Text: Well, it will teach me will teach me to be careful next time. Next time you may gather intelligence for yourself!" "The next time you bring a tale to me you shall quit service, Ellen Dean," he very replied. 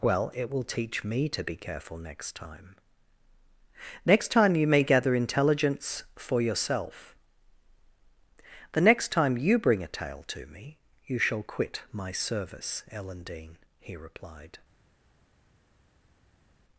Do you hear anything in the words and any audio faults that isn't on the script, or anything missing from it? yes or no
yes